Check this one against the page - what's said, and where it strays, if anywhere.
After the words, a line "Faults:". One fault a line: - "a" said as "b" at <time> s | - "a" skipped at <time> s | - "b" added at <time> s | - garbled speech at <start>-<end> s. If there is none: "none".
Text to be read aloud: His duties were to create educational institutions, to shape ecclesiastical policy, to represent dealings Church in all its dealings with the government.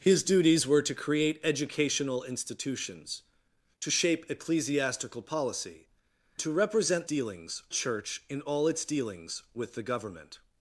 His duties were to create educational institutions, to shape ecclesiastical policy, to represent dealings Church in all its dealings with the government.
Faults:
none